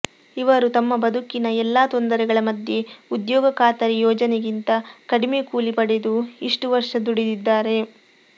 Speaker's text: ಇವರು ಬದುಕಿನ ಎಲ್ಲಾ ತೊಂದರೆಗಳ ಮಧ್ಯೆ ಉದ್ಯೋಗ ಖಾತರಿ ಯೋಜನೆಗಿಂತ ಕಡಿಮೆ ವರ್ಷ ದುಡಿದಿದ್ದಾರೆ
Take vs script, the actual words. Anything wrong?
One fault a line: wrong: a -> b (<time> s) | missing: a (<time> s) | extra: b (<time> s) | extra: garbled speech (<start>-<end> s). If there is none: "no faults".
extra: ತಮ್ಮ (0.8 s)
extra: ಕೂಲಿ ಪಡೆದು ಇಷ್ಟು (5.5 s)